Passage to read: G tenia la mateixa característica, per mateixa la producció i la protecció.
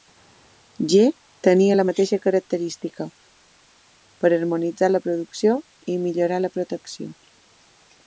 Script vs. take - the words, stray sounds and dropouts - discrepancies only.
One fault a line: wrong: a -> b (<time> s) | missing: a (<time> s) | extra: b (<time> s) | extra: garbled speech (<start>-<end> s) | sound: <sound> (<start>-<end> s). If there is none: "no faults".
wrong: mateixa -> harmonitzar (4.4 s)
extra: millorar (6.1 s)